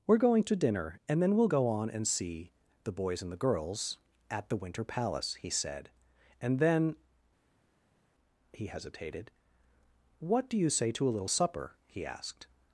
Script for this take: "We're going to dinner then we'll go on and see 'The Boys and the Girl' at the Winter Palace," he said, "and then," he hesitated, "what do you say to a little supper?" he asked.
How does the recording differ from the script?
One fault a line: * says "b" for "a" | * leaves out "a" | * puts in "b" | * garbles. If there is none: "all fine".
* puts in "and"
* says "Girls" for "Girl"